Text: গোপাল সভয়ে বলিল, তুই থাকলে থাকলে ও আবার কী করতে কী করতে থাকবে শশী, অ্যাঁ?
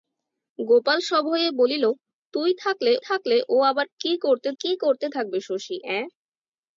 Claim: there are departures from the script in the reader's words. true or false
false